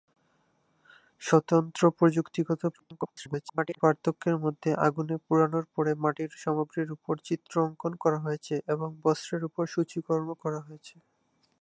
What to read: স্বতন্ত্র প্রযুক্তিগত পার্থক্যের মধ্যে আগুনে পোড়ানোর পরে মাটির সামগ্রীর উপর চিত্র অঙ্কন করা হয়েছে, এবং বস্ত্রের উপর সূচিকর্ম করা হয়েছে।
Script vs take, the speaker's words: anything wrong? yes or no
yes